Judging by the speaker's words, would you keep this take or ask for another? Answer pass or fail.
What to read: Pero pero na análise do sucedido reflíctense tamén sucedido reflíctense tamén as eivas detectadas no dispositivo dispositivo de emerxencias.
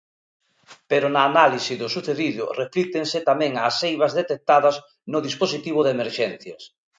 fail